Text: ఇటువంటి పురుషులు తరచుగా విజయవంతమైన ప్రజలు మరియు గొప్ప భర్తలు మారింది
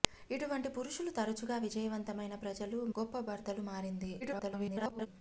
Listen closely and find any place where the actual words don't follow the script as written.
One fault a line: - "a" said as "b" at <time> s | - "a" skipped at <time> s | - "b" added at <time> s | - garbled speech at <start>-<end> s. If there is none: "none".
- "మరియు" skipped at 2.8 s
- garbled speech at 4.2-5.1 s